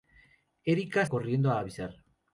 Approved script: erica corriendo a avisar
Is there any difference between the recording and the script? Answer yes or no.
no